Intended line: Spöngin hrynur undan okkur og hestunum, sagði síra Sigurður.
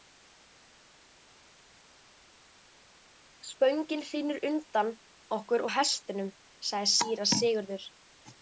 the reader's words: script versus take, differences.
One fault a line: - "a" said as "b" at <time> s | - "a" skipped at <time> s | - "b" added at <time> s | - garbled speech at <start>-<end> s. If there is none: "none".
none